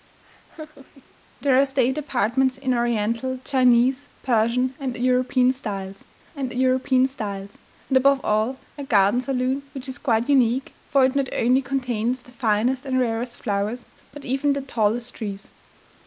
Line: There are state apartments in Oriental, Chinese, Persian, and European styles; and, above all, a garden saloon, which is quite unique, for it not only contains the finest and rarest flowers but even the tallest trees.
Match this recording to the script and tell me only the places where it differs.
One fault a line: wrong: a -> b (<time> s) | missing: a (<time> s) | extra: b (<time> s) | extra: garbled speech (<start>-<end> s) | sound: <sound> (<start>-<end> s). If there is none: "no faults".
sound: laugh (0.2-1.1 s)
extra: European styles and (6.5 s)